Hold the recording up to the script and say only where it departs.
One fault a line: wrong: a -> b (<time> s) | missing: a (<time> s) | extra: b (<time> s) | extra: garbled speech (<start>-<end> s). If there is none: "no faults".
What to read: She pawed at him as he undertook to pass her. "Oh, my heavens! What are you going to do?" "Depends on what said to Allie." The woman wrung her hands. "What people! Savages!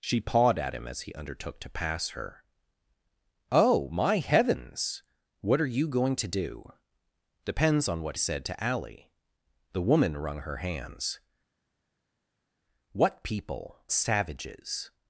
no faults